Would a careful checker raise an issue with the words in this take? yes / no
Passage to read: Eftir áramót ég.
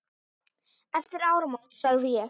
yes